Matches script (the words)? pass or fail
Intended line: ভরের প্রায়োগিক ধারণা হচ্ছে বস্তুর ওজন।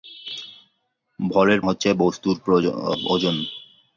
fail